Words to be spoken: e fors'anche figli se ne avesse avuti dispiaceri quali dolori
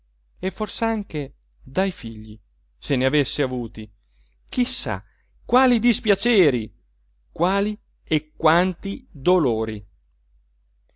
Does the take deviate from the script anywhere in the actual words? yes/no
yes